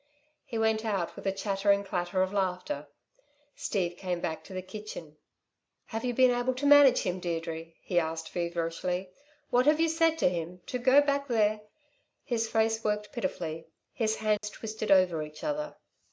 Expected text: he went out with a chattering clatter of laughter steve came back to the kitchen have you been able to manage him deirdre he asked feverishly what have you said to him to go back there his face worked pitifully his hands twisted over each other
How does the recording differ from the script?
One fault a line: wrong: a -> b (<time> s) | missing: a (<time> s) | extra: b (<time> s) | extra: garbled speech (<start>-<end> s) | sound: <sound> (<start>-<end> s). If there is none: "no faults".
sound: dropout (14.4-14.4 s)